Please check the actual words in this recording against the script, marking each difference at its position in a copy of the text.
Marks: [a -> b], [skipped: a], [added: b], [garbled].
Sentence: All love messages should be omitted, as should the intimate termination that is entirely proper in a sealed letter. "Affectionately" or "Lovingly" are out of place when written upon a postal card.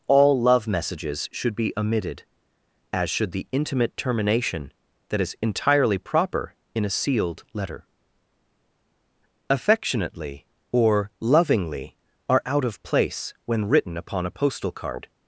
All love messages should be omitted, as should the intimate termination that is entirely proper in a sealed letter. "Affectionately" or "Lovingly" are out of place when written upon a postal card.